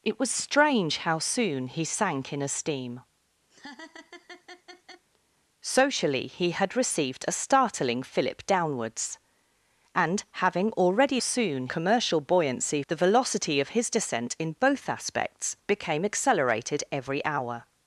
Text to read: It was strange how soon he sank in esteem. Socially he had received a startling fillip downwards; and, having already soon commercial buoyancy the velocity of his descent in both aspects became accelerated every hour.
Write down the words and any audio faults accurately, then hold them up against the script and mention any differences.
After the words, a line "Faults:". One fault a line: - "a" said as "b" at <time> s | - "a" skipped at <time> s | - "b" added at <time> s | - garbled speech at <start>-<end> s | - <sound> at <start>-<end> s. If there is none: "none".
It was strange how soon he sank in esteem. Socially he had received a startling fillip downwards; and, having already soon commercial buoyancy the velocity of his descent in both aspects became accelerated every hour.
Faults:
- laugh at 3.5-5.1 s